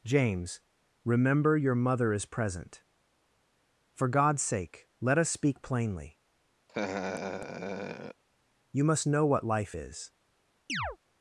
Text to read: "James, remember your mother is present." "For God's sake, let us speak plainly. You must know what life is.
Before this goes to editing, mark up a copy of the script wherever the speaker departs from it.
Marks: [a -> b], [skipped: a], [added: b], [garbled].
"James, remember your mother is present." "For God's sake, let us speak plainly. You must know what life is.